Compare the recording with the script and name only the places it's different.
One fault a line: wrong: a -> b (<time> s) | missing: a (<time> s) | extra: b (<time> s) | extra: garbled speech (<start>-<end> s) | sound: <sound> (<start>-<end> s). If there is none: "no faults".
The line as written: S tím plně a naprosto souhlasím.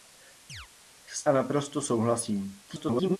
sound: chirp (0.5-0.7 s)
missing: tím plně (1.3 s)
extra: garbled speech (2.7-3.2 s)